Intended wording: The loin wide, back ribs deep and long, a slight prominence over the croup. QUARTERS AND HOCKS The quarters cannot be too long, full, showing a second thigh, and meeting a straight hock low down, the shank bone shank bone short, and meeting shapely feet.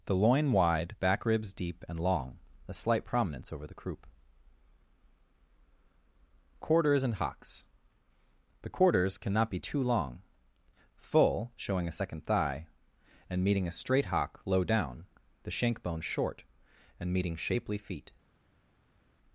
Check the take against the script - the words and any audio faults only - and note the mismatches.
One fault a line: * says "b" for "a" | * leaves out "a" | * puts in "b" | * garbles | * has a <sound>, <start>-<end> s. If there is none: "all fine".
* leaves out "shank bone"